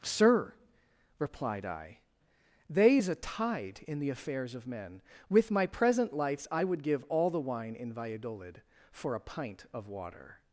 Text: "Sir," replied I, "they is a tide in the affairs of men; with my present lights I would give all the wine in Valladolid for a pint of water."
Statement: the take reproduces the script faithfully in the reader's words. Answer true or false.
true